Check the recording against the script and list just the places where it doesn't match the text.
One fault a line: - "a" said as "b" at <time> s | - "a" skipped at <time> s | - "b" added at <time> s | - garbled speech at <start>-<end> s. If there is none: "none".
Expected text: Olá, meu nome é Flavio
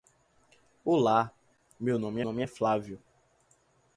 - "nome" added at 2.2 s